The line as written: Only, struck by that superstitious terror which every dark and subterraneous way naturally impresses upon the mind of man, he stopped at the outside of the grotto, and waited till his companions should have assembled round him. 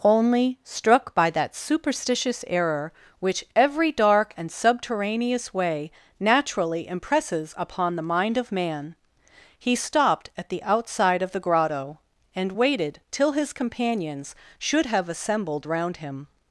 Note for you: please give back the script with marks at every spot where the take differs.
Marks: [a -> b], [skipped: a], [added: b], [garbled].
Only, struck by that superstitious [terror -> error] which every dark and subterraneous way naturally impresses upon the mind of man, he stopped at the outside of the grotto, and waited till his companions should have assembled round him.